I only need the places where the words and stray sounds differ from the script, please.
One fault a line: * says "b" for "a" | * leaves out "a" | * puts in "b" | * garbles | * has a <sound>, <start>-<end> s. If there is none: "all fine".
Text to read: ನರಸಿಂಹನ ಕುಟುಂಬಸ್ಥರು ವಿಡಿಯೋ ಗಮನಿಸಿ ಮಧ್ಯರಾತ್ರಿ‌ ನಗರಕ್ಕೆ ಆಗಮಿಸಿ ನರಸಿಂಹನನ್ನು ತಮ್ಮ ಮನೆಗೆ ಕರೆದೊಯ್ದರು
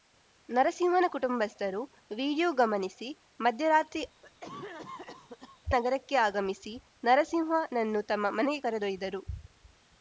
* has a cough, 4.2-5.6 s